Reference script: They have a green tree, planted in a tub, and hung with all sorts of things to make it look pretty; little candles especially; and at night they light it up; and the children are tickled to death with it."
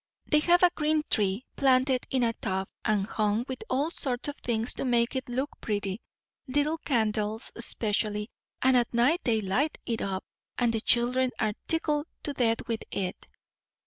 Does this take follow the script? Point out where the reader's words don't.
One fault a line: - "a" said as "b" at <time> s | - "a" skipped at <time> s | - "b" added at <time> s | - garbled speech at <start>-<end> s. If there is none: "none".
none